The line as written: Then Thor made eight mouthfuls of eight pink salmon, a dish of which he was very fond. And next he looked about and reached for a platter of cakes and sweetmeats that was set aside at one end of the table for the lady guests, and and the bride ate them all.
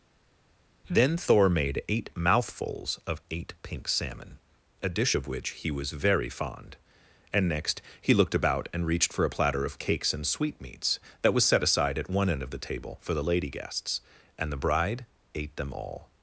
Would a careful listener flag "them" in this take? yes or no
no